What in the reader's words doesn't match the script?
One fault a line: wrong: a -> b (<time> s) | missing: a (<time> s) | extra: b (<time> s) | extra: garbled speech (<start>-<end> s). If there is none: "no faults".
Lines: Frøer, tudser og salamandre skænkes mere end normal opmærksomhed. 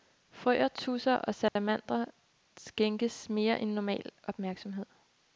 no faults